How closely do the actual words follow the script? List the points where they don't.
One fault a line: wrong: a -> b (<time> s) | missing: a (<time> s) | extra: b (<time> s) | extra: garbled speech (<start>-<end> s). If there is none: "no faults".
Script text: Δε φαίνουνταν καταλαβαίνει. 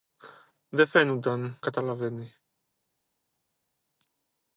no faults